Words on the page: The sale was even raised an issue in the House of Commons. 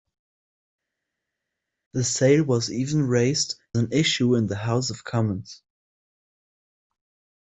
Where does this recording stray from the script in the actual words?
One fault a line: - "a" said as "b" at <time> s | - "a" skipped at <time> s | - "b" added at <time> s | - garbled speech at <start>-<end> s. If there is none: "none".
none